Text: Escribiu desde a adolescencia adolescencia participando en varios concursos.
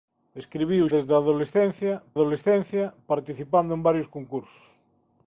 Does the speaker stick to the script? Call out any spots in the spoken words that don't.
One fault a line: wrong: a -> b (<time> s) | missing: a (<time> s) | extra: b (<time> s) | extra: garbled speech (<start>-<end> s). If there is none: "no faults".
no faults